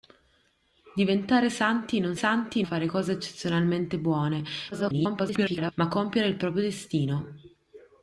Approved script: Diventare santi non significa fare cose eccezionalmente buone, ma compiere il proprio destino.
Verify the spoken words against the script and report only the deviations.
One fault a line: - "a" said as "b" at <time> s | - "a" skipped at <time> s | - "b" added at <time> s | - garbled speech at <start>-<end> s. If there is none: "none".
- "significa" said as "santi" at 2.1 s
- garbled speech at 4.7-5.7 s